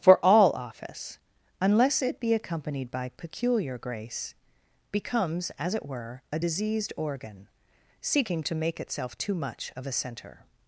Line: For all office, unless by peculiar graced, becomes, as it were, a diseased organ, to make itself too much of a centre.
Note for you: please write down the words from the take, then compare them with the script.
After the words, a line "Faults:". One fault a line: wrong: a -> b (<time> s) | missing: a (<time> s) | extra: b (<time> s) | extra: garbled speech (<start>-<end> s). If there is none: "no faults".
For all office, unless it be accompanied by peculiar grace, becomes, as it were, a diseased organ, seeking to make itself too much of a centre.
Faults:
extra: it be accompanied (2.0 s)
wrong: graced -> grace (3.8 s)
extra: seeking (8.0 s)